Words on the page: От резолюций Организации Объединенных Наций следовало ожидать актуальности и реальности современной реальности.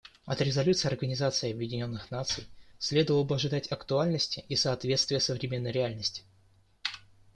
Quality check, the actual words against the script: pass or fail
fail